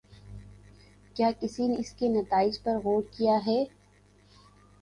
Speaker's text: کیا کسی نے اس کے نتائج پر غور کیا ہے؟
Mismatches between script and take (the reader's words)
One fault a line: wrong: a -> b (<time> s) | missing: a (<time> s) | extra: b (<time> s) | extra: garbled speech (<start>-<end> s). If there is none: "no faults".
no faults